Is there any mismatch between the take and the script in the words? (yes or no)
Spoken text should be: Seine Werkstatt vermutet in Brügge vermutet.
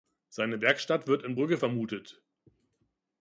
yes